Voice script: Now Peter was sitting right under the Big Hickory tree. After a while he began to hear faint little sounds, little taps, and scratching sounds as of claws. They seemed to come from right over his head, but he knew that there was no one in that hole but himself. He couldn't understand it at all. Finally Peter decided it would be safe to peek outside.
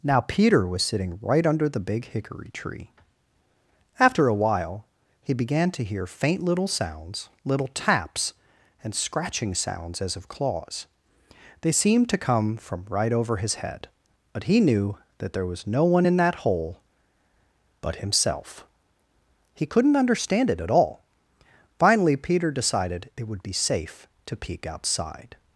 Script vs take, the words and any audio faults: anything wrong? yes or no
no